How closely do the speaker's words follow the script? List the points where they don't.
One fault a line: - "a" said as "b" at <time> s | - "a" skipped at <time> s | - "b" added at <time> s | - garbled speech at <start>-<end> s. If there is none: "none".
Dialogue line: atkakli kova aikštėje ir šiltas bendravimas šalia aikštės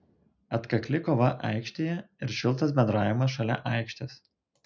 none